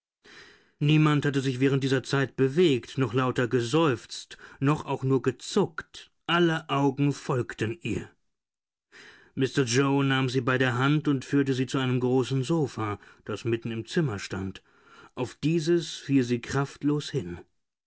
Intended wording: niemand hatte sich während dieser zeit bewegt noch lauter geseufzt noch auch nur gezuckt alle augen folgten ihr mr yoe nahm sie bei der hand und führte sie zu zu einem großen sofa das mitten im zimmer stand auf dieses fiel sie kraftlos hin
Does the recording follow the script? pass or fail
fail